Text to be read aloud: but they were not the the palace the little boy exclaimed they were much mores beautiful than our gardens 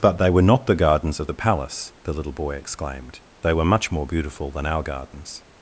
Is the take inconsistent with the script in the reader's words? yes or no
yes